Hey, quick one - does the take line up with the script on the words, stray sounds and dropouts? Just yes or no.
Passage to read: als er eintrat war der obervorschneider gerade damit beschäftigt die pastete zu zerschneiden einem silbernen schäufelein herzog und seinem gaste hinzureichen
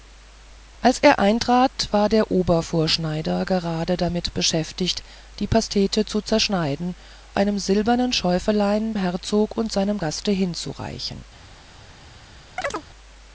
no